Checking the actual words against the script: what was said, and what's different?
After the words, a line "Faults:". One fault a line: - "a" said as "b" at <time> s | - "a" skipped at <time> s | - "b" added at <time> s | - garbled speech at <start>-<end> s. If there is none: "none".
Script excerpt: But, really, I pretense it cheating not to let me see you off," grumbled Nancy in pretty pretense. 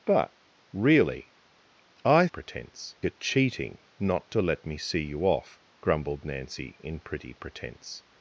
But, really, I pretense it cheating not to let me see you off," grumbled Nancy in pretty pretense.
Faults:
none